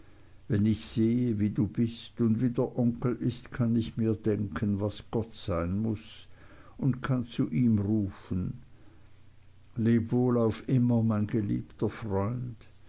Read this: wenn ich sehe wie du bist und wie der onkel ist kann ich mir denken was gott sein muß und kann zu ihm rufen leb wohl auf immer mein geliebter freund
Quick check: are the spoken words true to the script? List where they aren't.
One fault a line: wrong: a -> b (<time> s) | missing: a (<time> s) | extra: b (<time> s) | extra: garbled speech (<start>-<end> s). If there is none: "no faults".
no faults